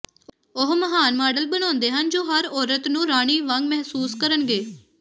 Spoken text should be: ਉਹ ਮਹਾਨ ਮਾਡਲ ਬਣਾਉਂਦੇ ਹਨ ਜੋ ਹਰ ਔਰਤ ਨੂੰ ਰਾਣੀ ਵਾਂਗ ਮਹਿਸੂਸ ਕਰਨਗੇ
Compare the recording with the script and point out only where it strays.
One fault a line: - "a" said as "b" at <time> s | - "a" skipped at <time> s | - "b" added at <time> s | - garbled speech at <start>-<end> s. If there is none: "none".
none